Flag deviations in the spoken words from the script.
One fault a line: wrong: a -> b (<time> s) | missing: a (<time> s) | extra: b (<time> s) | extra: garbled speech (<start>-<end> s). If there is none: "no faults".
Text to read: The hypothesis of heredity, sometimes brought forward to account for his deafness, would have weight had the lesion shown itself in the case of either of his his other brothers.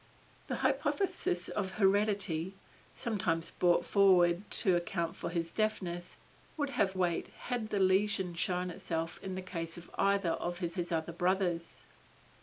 no faults